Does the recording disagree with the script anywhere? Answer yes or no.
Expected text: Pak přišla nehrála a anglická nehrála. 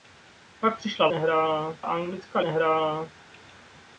no